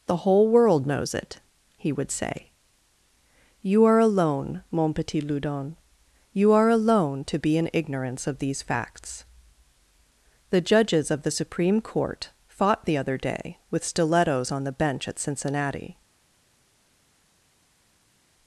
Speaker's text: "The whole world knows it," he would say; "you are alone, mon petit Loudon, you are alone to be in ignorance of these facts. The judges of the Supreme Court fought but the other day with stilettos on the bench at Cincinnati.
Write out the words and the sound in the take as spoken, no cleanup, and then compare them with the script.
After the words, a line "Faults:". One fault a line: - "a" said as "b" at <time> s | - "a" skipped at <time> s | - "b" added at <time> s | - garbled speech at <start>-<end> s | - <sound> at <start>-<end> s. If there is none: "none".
"The whole world knows it," he would say; "you are alone, mon petit Loudon, you are alone to be in ignorance of these facts. The judges of the Supreme Court fought the other day with stilettos on the bench at Cincinnati.
Faults:
- "but" skipped at 12.8 s